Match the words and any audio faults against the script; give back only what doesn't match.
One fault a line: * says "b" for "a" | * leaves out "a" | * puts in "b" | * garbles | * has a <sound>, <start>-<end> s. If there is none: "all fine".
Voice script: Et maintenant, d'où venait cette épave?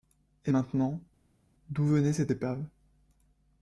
all fine